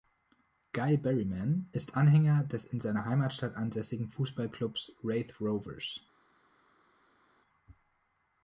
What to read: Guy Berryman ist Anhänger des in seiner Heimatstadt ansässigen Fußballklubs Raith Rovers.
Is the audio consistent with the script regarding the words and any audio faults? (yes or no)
yes